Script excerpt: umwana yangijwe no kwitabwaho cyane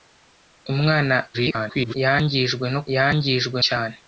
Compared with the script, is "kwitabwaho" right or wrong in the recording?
wrong